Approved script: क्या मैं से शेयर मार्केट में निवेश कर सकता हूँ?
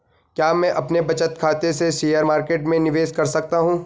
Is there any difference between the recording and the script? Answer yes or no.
yes